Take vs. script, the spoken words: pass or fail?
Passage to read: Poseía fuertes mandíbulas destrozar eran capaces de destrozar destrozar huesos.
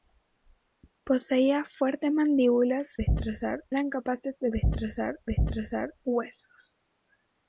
pass